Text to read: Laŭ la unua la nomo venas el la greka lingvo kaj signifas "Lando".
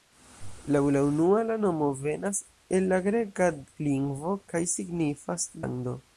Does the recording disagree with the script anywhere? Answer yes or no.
no